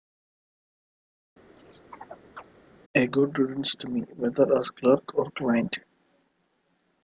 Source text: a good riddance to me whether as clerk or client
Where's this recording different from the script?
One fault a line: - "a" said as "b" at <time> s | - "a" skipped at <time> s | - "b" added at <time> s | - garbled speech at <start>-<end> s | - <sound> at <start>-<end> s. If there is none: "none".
- chirp at 1.6-2.5 s